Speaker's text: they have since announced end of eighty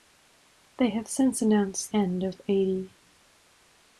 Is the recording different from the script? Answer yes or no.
no